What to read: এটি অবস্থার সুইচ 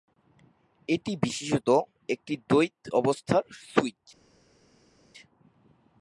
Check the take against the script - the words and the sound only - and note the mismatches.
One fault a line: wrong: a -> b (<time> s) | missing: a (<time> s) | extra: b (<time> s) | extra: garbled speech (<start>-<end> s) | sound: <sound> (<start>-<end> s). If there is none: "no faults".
extra: বিশেষত একটি দ্বৈত (1.2 s)